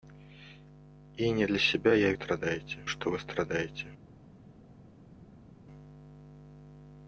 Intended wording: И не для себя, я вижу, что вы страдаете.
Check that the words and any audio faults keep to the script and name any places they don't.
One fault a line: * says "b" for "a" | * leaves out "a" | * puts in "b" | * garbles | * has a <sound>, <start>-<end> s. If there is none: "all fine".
* says "страдаете" for "вижу"